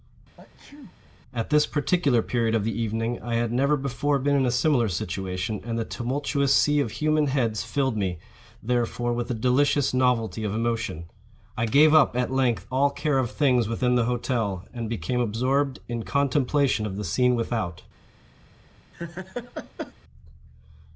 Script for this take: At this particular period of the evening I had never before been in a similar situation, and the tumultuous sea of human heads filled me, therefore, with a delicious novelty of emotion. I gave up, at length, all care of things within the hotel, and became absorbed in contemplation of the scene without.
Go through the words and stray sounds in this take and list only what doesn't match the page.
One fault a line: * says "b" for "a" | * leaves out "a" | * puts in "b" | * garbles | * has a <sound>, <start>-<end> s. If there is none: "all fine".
* has a sneeze, 0.4-0.9 s
* has a laugh, 18.9-19.9 s